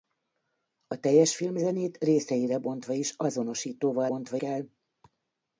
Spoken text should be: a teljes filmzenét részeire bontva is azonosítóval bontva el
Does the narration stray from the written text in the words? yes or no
no